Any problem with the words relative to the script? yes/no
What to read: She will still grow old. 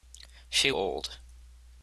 yes